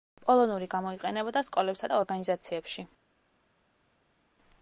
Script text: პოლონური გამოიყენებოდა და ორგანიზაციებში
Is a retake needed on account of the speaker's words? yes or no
yes